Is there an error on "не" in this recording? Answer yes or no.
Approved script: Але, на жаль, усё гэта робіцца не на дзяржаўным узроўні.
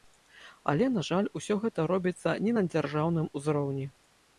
no